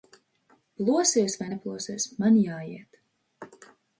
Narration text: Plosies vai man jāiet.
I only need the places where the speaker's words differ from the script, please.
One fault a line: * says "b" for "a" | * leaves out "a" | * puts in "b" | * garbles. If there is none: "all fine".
* puts in "neplosies"